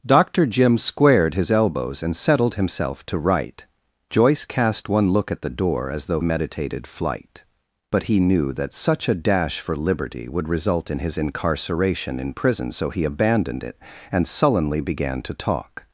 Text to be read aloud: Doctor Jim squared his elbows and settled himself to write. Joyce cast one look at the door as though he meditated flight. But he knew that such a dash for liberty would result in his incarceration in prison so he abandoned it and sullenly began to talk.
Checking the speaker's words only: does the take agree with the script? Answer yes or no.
no